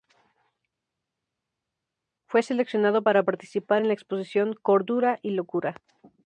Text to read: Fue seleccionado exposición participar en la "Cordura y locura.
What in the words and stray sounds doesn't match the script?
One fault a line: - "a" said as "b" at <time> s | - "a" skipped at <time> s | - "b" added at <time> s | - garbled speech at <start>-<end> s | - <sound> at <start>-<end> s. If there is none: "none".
- "exposición" said as "para" at 3.0 s
- "exposición" added at 3.9 s